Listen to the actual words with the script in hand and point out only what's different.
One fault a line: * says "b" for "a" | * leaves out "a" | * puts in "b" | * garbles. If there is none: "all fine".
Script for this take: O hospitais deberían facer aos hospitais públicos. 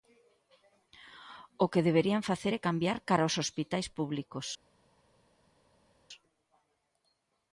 * says "que" for "hospitais"
* puts in "é cambiar cara"